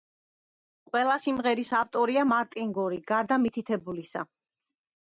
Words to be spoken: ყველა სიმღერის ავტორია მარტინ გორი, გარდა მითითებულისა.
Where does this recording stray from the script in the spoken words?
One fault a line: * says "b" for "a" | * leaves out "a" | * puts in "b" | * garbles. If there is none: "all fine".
all fine